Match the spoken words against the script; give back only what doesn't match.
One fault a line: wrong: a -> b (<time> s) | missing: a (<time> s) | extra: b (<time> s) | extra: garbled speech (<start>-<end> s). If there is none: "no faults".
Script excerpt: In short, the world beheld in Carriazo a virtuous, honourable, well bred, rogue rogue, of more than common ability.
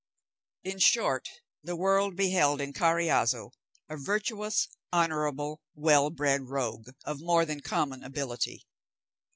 missing: rogue (6.9 s)